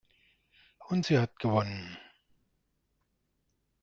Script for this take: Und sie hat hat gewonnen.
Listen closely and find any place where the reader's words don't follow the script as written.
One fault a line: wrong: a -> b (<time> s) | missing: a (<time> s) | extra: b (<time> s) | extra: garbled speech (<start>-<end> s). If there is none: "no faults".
missing: hat (1.4 s)